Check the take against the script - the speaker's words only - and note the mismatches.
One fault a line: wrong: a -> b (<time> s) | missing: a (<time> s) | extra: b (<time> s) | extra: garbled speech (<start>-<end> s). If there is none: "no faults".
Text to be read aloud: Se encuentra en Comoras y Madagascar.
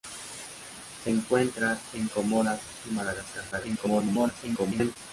extra: garbled speech (3.5-5.0 s)